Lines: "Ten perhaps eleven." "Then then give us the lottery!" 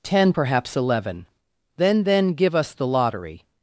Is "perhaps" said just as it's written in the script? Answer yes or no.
yes